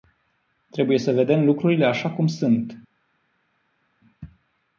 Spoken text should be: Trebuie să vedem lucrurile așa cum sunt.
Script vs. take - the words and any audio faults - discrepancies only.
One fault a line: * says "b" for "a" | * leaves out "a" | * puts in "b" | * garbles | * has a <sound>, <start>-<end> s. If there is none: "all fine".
all fine